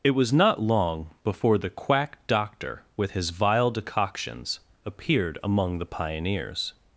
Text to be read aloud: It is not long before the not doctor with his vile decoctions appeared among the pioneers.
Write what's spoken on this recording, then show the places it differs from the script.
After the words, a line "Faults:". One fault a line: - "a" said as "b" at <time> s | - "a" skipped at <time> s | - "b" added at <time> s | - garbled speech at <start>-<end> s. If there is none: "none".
It was not long before the quack doctor with his vile decoctions appeared among the pioneers.
Faults:
- "is" said as "was" at 0.1 s
- "not" said as "quack" at 1.7 s